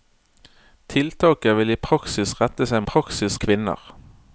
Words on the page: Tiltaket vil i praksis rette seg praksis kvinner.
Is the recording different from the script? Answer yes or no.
no